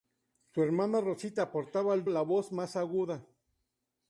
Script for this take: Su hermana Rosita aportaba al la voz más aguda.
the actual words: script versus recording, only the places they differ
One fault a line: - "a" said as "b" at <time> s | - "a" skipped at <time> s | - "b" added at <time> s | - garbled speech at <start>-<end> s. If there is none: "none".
none